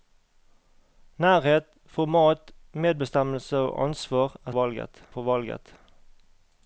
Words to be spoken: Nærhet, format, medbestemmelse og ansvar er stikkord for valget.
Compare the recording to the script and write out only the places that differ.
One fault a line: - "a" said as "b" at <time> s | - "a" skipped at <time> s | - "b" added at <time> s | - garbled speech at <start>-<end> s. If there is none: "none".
- "stikkord" said as "valget" at 4.5 s